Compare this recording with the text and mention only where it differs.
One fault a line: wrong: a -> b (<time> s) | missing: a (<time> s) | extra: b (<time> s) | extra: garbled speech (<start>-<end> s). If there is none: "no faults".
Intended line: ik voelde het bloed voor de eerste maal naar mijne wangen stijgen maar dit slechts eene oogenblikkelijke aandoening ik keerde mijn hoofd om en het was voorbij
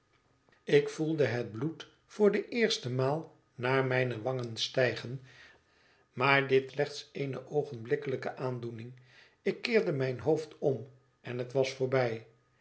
no faults